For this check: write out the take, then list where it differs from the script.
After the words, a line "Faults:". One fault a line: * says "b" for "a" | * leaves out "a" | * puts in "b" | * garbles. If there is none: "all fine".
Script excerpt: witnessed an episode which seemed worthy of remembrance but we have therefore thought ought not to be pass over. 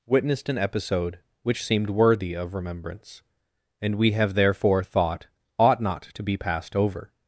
witnessed an episode which seemed worthy of remembrance and we have therefore thought ought not to be passed over.
Faults:
* says "and" for "but"
* says "passed" for "pass"